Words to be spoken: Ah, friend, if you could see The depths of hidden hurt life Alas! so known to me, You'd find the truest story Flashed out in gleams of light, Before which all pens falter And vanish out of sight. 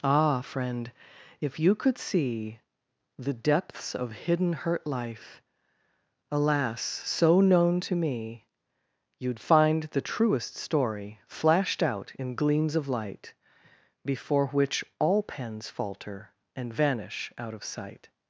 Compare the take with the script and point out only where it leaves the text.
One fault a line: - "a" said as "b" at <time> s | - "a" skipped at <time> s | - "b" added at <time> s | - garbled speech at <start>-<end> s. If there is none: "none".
none